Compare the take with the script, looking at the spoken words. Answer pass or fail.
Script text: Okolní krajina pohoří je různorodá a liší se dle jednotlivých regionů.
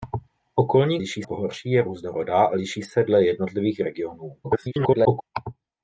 fail